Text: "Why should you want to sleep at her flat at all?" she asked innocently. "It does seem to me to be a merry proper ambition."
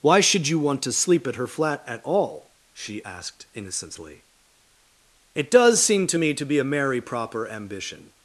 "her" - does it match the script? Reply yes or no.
yes